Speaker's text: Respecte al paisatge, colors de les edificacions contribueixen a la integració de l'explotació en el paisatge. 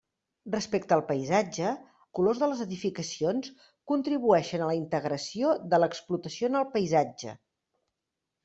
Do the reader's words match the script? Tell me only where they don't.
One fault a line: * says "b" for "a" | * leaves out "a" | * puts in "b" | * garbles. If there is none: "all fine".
all fine